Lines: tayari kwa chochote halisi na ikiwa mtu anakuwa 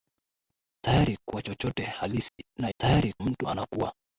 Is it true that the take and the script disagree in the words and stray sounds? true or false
true